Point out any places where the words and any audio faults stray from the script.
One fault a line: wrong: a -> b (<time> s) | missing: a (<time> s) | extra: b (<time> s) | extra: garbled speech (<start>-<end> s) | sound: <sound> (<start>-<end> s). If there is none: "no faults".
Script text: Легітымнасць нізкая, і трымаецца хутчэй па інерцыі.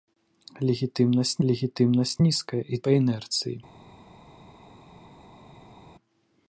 extra: легітымнасць (1.5 s)
missing: трымаецца хутчэй (2.8 s)